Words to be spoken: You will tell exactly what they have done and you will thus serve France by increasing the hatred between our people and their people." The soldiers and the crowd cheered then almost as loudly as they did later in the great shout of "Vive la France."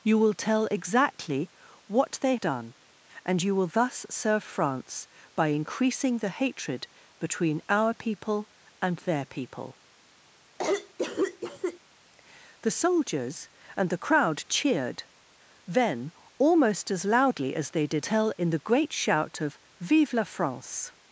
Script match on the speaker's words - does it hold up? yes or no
no